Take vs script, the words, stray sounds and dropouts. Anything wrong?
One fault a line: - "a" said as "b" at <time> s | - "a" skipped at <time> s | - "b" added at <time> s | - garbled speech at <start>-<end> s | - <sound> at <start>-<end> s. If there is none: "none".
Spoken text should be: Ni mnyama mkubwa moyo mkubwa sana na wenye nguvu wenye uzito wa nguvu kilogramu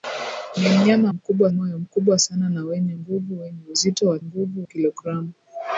none